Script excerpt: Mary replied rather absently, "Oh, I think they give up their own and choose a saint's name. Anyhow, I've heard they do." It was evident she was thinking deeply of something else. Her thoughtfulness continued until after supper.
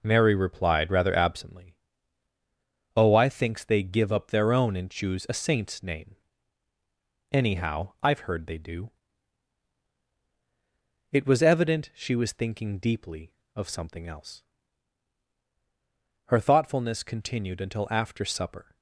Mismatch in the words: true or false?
true